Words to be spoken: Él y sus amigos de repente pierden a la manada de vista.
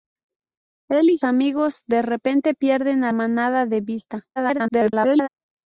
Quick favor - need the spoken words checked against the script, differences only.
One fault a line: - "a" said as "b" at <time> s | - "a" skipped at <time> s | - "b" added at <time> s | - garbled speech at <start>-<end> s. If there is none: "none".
- "sus" skipped at 1.2 s
- "la" skipped at 3.1 s
- garbled speech at 4.4-5.3 s